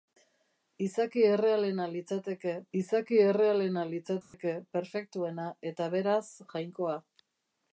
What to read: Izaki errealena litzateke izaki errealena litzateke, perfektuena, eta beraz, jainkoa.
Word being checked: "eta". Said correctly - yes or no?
yes